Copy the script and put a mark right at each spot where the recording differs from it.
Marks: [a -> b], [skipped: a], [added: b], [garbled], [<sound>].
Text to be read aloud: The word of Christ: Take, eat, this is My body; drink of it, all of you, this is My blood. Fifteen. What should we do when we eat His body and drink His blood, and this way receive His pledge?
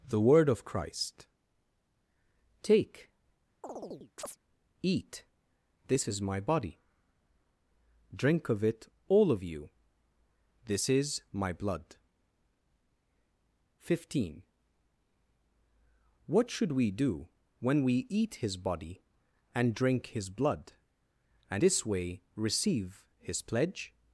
The word of Christ: Take, [chirp] eat, this is My body; drink of it, all of you, this is My blood. Fifteen. What should we do when we eat His body and drink His blood, and this way receive His pledge?